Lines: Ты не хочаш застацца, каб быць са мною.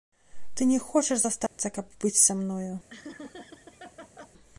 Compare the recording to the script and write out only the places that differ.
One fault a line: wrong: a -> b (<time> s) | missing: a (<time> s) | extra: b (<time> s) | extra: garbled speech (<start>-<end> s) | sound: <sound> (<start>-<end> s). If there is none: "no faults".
sound: dropout (1.5-1.6 s)
sound: laugh (2.9-4.3 s)